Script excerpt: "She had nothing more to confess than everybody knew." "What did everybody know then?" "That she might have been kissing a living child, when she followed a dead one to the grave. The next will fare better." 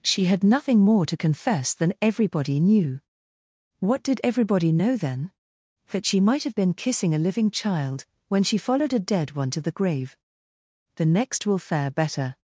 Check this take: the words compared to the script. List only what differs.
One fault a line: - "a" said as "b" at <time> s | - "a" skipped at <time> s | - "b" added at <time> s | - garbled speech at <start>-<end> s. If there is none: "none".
none